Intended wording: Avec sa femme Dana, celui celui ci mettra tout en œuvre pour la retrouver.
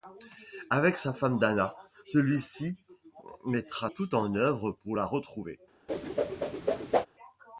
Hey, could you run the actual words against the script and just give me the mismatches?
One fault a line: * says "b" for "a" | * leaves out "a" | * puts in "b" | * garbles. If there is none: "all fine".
* leaves out "celui"